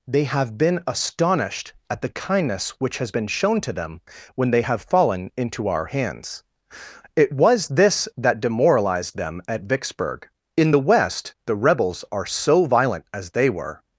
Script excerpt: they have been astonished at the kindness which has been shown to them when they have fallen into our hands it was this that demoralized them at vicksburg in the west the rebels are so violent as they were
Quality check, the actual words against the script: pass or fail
pass